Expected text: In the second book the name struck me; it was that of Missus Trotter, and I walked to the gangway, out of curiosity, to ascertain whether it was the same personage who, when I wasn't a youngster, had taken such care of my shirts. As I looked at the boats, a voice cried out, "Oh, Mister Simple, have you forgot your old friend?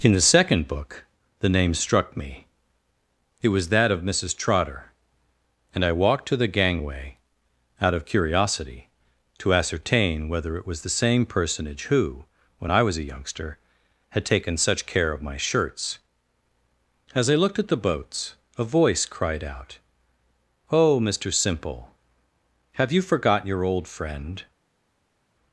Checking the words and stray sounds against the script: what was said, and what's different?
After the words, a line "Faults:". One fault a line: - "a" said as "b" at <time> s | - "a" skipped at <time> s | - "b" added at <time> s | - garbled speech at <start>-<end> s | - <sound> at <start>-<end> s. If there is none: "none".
In the second book the name struck me; it was that of Missus Trotter, and I walked to the gangway, out of curiosity, to ascertain whether it was the same personage who, when I was a youngster, had taken such care of my shirts. As I looked at the boats, a voice cried out, "Oh, Mister Simple, have you forgot your old friend?
Faults:
- "wasn't" said as "was" at 12.8 s